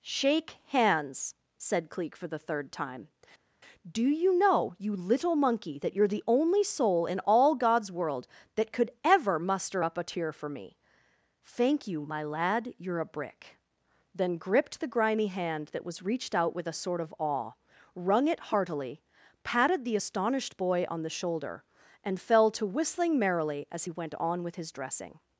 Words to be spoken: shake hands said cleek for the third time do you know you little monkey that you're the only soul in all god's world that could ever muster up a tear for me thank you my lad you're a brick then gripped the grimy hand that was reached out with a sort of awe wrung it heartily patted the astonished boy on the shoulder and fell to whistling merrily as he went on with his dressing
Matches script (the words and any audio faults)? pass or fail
pass